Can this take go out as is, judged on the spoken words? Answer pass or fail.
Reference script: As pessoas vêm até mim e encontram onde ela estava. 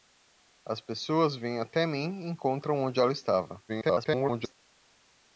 fail